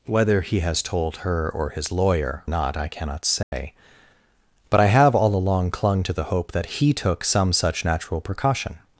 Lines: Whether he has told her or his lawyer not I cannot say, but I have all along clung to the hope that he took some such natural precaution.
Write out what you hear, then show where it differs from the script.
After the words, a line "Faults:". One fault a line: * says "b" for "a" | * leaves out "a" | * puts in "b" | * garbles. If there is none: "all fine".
Whether he has told her or his lawyer not I cannot say, but I have all along clung to the hope that he took some such natural precaution.
Faults:
all fine